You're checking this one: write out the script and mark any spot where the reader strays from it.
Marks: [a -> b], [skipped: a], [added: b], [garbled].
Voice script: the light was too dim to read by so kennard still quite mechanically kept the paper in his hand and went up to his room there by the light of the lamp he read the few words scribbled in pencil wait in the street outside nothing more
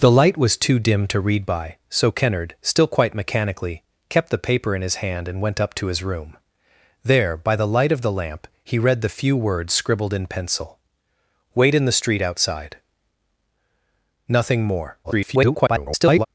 the light was too dim to read by so kennard still quite mechanically kept the paper in his hand and went up to his room there by the light of the lamp he read the few words scribbled in pencil wait in the street outside nothing more [garbled]